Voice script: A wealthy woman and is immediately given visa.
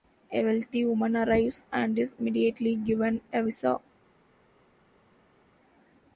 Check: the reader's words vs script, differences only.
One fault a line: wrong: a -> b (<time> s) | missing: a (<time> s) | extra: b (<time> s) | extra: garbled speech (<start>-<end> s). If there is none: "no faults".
extra: arrives (1.1 s)
extra: a (3.3 s)